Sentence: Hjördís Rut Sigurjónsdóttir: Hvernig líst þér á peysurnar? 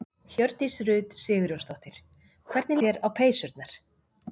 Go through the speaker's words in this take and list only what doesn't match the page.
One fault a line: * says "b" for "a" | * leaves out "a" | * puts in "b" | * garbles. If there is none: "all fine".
* leaves out "líst"